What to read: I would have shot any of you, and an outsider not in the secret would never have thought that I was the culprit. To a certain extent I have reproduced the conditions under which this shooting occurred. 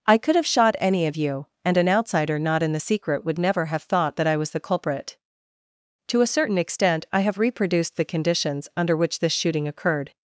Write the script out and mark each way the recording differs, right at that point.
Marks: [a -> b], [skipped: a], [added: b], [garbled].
I [would -> could] have shot any of you, and an outsider not in the secret would never have thought that I was the culprit. To a certain extent I have reproduced the conditions under which this shooting occurred.